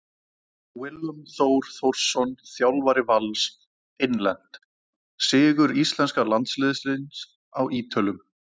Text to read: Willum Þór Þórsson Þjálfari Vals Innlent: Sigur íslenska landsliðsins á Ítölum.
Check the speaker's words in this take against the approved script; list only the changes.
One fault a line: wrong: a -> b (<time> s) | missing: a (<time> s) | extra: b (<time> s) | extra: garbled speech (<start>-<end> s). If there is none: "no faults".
no faults